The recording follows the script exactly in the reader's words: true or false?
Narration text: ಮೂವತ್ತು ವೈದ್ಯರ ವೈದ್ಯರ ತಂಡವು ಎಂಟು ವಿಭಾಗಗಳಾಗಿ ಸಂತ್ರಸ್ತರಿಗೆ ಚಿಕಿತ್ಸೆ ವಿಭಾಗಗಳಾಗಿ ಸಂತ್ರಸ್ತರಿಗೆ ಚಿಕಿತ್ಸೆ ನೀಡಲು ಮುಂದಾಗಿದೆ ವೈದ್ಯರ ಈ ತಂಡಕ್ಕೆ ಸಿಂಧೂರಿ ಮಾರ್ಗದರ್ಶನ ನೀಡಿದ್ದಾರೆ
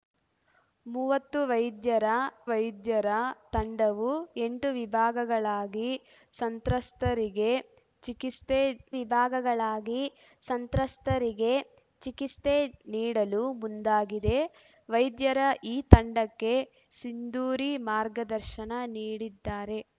true